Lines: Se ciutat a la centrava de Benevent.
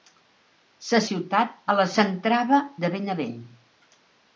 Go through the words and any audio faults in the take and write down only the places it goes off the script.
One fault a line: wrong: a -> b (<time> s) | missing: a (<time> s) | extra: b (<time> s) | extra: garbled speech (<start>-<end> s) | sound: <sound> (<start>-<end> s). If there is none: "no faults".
no faults